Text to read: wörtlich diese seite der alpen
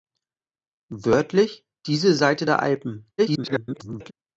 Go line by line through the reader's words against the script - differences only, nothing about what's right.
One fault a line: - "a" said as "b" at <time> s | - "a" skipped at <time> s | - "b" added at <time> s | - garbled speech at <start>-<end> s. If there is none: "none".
- garbled speech at 3.2-4.1 s